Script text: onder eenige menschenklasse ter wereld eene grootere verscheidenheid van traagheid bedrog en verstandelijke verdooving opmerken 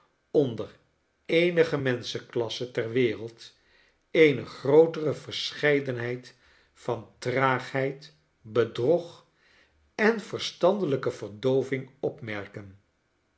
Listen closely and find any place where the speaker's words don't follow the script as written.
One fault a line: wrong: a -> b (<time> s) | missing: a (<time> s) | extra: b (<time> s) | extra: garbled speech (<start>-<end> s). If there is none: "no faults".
no faults